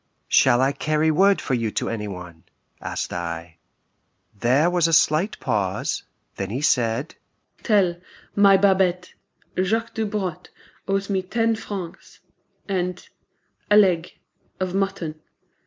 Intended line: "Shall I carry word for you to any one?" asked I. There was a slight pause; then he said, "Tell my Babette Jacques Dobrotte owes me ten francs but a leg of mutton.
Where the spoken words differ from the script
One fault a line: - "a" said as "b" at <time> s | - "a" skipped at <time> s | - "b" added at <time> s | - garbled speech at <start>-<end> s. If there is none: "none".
- "but" said as "and" at 12.7 s